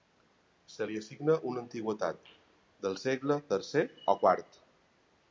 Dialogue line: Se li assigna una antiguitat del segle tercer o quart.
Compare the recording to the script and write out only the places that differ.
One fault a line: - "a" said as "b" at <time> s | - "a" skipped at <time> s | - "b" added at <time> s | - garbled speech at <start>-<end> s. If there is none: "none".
none